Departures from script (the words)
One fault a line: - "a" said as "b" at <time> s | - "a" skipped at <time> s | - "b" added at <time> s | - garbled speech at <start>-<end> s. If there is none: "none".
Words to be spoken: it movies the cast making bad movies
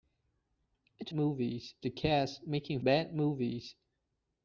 none